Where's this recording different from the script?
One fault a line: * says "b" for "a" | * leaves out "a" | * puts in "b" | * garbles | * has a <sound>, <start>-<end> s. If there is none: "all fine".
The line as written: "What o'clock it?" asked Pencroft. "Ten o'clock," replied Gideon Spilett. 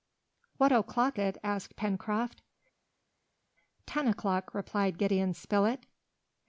all fine